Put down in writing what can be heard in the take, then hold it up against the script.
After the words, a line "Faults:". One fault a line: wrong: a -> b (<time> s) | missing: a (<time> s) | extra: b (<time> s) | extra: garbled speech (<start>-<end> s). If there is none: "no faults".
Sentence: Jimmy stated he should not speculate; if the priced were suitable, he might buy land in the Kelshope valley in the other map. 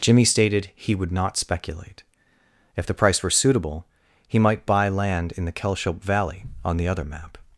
Jimmy stated he would not speculate; if the price were suitable, he might buy land in the Kelshope valley on the other map.
Faults:
wrong: should -> would (0.9 s)
wrong: priced -> price (2.9 s)
wrong: in -> on (6.6 s)